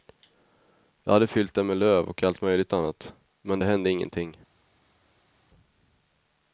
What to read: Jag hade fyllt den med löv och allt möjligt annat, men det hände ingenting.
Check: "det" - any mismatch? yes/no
no